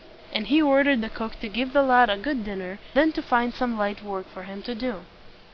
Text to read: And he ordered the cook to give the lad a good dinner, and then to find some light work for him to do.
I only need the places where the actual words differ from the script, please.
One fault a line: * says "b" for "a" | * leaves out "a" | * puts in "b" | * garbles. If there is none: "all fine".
* leaves out "and"